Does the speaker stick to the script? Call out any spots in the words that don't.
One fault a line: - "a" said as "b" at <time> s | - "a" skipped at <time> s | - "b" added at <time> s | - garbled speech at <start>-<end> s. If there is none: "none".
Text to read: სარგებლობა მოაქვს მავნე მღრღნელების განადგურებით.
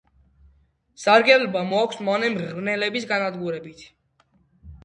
none